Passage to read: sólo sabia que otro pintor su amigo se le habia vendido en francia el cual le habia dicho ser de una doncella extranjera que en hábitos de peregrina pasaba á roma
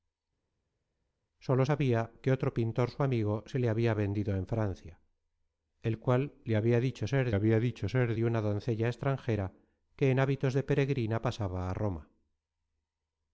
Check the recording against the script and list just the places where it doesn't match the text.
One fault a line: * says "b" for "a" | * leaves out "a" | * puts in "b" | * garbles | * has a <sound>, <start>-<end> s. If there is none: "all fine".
* puts in "habia dicho ser"